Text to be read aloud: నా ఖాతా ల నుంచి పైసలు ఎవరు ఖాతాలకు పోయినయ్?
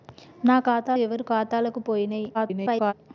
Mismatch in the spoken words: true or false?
true